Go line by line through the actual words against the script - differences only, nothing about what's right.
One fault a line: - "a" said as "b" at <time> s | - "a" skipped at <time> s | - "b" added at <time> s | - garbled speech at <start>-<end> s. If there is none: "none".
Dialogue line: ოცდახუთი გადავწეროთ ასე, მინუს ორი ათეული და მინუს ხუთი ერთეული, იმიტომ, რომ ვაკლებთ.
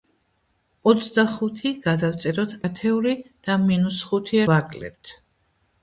- "ასე მინუს ორი" skipped at 2.5 s
- "ერთეული იმიტომ რომ" skipped at 4.4 s